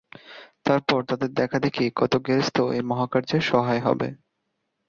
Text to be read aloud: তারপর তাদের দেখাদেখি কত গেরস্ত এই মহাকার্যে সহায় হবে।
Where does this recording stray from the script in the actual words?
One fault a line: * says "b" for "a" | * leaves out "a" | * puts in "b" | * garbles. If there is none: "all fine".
all fine